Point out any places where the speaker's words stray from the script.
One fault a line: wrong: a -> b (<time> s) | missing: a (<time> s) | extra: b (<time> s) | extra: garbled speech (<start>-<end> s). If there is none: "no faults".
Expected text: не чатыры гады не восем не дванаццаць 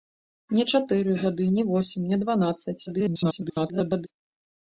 extra: garbled speech (2.9-4.1 s)